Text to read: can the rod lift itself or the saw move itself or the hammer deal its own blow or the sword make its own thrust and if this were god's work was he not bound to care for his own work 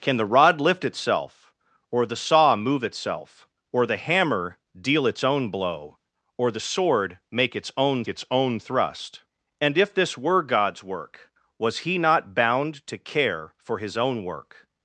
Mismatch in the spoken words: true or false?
true